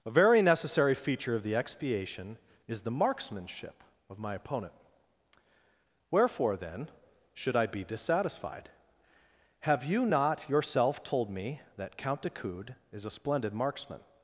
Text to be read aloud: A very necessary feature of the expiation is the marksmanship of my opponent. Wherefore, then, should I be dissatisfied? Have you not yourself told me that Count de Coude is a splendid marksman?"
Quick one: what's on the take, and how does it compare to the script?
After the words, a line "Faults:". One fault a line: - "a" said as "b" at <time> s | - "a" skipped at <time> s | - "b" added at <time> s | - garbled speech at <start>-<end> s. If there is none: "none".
A very necessary feature of the expiation is the marksmanship of my opponent. Wherefore, then, should I be dissatisfied? Have you not yourself told me that Count de Coude is a splendid marksman?"
Faults:
none